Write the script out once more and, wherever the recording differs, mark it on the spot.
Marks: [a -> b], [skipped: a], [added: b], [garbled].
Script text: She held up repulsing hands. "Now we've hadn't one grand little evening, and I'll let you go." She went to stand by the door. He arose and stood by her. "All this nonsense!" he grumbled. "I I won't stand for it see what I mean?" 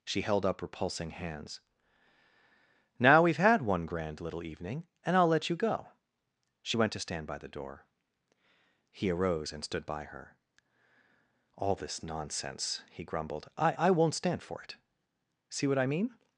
She held up repulsing hands. "Now we've [hadn't -> had] one grand little evening, and I'll let you go." She went to stand by the door. He arose and stood by her. "All this nonsense!" he grumbled. "I I won't stand for it see what I mean?"